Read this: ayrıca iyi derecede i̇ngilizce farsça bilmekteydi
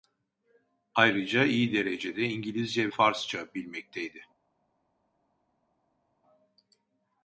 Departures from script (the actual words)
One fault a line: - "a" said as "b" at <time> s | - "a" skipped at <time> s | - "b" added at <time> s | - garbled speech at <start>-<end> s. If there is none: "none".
none